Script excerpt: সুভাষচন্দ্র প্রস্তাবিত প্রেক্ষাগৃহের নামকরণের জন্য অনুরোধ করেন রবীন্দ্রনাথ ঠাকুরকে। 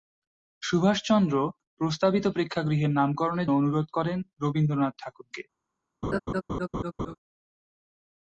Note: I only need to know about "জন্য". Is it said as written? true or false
false